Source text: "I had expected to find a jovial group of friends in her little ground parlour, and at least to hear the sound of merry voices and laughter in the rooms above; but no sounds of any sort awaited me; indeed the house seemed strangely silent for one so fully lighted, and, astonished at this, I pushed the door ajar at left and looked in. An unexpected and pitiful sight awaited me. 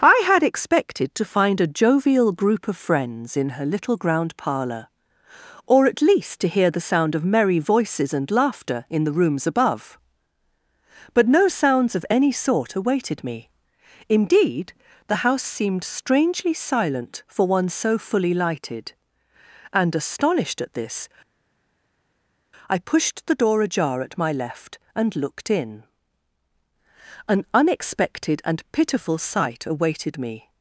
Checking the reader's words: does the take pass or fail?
fail